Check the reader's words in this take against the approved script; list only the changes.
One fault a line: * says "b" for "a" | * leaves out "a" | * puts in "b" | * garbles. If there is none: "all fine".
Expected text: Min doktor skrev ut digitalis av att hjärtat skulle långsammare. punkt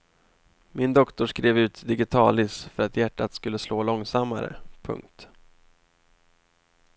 * says "för" for "av"
* puts in "slå"